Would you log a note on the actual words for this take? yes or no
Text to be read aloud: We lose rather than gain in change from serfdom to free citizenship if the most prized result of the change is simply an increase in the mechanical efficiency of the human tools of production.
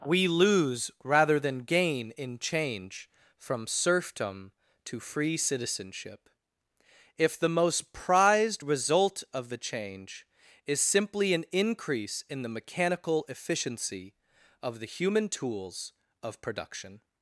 no